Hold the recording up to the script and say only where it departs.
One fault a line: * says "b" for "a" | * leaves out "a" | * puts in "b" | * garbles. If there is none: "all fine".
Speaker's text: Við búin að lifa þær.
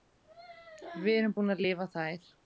* puts in "erum"